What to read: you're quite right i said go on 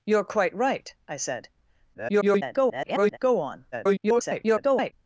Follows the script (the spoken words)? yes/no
no